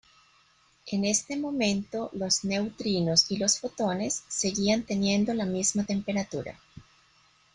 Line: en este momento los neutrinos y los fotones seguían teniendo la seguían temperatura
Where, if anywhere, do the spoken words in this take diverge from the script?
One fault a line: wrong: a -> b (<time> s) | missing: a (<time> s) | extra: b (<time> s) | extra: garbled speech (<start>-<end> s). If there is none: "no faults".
wrong: seguían -> misma (5.5 s)